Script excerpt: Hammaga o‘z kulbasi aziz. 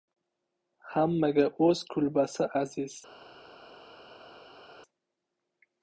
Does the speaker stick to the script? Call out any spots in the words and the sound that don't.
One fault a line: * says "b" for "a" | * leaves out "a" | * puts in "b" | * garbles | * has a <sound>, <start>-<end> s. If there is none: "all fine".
all fine